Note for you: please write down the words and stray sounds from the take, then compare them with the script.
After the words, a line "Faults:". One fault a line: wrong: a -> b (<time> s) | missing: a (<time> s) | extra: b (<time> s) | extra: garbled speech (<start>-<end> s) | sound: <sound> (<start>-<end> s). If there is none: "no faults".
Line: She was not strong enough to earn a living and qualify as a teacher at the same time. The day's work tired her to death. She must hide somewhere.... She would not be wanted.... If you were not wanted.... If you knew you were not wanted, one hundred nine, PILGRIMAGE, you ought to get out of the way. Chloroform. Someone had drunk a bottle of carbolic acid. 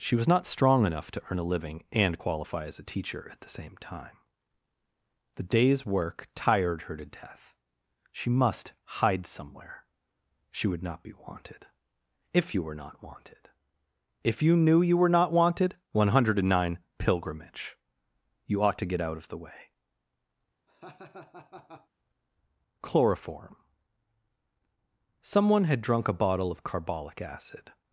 She was not strong enough to earn a living and qualify as a teacher at the same time. The day's work tired her to death. She must hide somewhere.... She would not be wanted.... If you were not wanted.... If you knew you were not wanted, one hundred nine, PILGRIMAGE, you ought to get out of the way. Chloroform. Someone had drunk a bottle of carbolic acid.
Faults:
sound: laugh (20.7-21.9 s)